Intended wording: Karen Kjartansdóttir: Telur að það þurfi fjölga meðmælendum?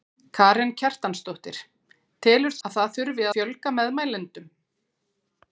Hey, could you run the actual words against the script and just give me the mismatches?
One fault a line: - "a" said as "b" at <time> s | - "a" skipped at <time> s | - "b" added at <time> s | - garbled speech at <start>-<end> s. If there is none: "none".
none